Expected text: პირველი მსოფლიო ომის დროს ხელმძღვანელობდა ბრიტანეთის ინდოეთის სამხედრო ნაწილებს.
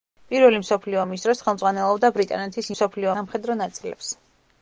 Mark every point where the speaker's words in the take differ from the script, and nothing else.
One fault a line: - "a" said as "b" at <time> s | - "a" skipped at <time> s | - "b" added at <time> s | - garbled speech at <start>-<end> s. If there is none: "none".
- "ინდოეთის" said as "მსოფლიო" at 2.7 s